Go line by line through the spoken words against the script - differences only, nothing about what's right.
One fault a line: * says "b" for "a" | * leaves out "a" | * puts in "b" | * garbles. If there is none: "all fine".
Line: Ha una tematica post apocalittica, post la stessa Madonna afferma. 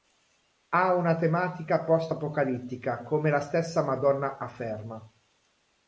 * says "come" for "post"